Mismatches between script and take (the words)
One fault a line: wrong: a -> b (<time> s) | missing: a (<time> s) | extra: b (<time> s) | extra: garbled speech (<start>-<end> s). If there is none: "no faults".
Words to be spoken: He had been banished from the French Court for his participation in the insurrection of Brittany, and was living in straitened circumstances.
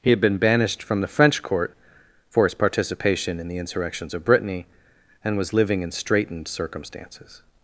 wrong: insurrection -> insurrections (3.6 s)